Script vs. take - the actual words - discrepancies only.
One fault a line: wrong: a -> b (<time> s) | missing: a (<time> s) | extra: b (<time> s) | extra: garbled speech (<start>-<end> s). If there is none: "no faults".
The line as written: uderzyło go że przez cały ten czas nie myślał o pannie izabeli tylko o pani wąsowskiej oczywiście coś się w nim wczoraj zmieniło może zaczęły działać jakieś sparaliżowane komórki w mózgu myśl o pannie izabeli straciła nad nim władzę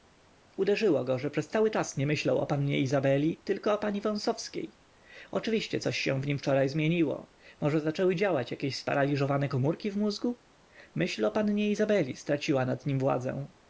missing: ten (1.7 s)